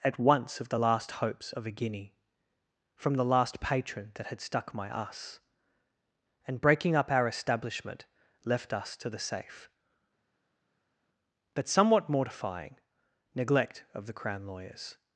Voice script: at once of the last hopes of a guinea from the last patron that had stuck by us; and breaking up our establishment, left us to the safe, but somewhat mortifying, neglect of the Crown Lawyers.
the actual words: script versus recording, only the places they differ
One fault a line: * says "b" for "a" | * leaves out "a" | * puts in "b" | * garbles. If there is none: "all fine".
* says "my" for "by"